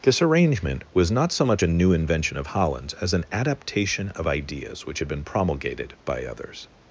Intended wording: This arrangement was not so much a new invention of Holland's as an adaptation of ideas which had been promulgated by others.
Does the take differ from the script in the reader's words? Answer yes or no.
no